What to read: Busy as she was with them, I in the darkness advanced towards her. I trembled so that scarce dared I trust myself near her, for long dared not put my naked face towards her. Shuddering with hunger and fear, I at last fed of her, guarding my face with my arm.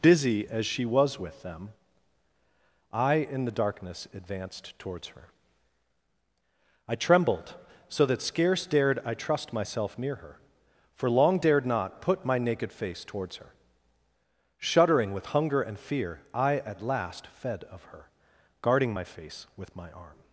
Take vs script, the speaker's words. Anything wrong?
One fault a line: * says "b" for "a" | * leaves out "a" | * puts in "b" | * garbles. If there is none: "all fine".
all fine